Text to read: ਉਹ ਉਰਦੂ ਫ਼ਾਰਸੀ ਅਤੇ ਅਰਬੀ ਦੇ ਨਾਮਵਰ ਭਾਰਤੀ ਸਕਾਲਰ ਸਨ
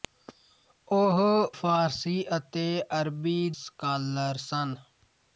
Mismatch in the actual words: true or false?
true